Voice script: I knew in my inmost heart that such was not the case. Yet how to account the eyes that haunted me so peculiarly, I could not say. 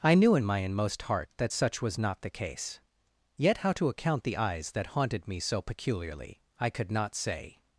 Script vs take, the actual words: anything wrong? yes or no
no